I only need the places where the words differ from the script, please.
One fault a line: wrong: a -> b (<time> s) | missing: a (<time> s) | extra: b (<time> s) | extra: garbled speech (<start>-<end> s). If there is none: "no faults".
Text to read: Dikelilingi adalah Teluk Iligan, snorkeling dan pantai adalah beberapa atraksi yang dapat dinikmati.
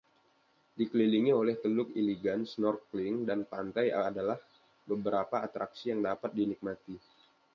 wrong: adalah -> oleh (1.3 s)